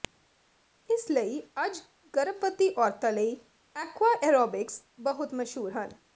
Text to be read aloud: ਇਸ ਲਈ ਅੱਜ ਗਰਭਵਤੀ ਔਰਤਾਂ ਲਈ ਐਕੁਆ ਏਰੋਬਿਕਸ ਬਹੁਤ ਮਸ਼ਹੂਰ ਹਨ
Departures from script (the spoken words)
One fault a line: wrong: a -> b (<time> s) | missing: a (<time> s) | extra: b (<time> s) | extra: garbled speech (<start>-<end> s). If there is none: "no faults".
no faults